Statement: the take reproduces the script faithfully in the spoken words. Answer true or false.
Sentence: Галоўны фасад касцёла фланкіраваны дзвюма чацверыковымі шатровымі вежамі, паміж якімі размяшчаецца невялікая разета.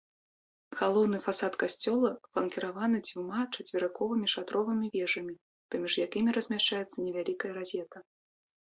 true